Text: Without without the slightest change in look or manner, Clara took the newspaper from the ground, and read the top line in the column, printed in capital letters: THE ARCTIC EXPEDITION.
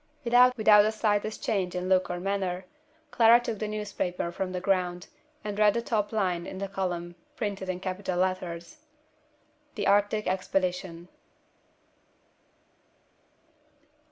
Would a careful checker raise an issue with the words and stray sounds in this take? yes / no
no